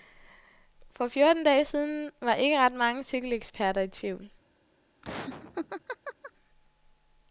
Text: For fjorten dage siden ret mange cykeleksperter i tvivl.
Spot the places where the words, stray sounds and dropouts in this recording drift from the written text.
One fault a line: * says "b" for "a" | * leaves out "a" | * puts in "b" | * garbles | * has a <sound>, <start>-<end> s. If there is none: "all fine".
* puts in "var ikke"
* has a laugh, 5.0-6.3 s